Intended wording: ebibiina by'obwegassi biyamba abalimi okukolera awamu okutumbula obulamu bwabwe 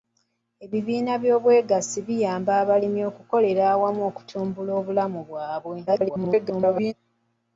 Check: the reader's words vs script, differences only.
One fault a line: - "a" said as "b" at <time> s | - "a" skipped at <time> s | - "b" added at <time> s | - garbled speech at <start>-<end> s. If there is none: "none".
- garbled speech at 5.9-6.9 s